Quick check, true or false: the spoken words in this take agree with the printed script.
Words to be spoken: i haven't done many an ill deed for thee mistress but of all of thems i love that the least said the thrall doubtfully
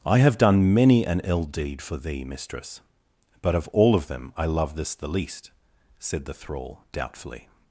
false